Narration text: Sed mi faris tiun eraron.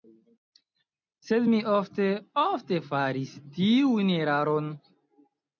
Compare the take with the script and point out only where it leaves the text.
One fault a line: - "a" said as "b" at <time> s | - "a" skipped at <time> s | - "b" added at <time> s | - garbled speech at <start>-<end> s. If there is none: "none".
- "ofte ofte" added at 1.7 s